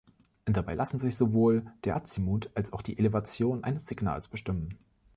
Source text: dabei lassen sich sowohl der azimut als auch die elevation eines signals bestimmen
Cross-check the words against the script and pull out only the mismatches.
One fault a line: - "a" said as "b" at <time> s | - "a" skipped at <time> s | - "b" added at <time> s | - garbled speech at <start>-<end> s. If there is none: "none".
none